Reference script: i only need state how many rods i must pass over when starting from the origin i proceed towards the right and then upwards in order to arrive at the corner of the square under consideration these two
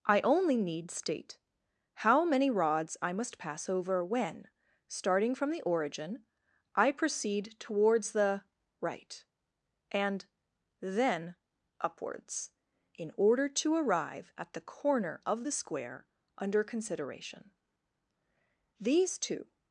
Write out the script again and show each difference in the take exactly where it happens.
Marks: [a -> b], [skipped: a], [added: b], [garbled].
i only need state how many rods i must pass over when starting from the origin i proceed towards the right and then upwards in order to arrive at the corner of the square under consideration these two